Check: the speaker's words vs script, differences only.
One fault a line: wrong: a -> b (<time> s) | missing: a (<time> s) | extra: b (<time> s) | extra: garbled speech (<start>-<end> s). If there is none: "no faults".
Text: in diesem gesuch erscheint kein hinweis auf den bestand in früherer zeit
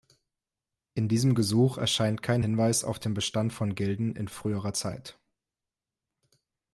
extra: von gilden (3.5 s)